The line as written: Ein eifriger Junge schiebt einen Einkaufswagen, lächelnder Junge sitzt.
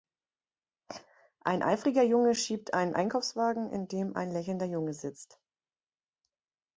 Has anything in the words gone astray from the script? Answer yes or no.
yes